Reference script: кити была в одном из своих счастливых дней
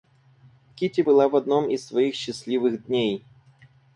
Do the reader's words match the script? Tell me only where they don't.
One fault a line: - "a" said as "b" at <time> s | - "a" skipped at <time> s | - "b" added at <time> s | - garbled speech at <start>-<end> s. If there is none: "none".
none